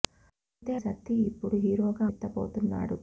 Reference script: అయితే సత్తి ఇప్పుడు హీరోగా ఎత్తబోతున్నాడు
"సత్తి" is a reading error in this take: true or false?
false